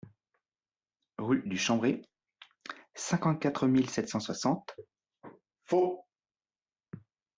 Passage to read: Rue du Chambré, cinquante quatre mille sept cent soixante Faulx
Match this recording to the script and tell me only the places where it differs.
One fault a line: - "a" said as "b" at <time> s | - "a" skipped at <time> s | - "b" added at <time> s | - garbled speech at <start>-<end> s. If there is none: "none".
none